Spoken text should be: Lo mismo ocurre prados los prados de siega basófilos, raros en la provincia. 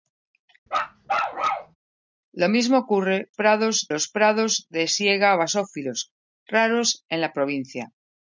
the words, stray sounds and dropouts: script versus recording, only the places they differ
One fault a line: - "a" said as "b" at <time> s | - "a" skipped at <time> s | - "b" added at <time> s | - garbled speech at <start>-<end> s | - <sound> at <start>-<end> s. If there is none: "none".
- bark at 0.7-1.8 s